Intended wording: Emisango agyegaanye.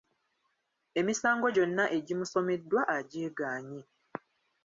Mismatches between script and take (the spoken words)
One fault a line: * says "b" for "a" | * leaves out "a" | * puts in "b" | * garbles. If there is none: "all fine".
* puts in "gyonna egimusomeddwa"